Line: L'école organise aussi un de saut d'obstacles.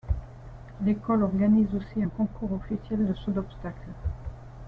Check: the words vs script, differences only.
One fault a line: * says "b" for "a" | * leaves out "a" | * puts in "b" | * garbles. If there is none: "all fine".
* puts in "concours officiel"